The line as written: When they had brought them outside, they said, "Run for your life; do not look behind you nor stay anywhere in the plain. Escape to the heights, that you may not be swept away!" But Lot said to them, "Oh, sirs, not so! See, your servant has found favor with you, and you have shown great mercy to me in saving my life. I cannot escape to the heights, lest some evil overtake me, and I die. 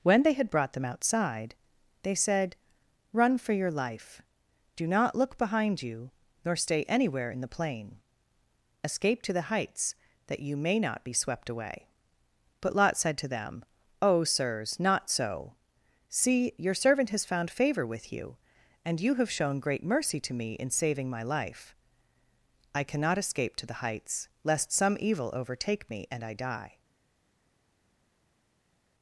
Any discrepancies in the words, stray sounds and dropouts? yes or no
no